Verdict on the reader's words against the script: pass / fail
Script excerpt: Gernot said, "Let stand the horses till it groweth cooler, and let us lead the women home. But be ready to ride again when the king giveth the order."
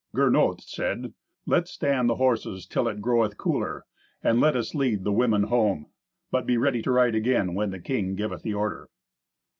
pass